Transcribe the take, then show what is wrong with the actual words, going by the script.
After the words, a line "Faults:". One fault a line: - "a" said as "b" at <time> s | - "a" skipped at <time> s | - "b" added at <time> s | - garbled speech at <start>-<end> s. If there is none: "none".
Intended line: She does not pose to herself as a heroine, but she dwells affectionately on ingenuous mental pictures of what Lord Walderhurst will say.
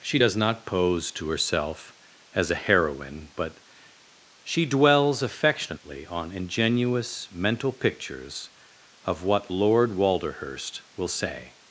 She does not pose to herself as a heroine, but she dwells affectionately on ingenuous mental pictures of what Lord Walderhurst will say.
Faults:
none